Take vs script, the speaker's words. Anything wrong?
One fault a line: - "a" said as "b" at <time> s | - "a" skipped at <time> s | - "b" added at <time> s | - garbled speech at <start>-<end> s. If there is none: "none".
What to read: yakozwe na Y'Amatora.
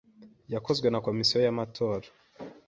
- "Komisiyo" added at 1.1 s